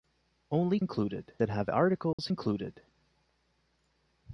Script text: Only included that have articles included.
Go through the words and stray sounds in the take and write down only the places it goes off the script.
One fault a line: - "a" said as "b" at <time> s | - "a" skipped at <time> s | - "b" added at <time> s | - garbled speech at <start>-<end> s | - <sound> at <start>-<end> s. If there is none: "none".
- dropout at 2.1-2.2 s